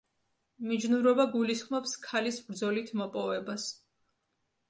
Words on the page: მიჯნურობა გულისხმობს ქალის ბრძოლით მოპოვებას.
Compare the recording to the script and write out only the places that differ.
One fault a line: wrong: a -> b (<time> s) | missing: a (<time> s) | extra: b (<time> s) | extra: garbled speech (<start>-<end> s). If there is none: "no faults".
no faults